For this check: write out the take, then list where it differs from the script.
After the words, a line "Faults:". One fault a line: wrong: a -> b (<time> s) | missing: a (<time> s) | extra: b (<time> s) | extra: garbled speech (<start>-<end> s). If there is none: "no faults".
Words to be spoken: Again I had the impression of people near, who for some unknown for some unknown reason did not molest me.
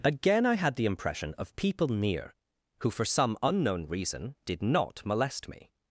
Again I had the impression of people near, who for some unknown reason did not molest me.
Faults:
missing: for some unknown (3.9 s)